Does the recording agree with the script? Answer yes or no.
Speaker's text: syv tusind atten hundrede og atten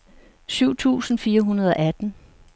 no